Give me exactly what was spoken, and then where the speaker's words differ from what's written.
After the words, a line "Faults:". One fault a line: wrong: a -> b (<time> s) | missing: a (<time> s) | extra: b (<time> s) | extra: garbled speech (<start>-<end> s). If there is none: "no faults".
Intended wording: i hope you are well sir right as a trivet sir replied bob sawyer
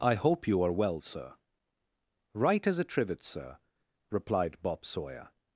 i hope you are well sir right as a trivet sir replied bob sawyer
Faults:
no faults